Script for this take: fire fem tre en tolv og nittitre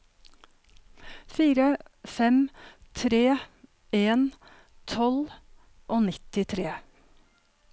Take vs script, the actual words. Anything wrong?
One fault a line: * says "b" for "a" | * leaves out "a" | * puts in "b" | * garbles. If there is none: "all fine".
all fine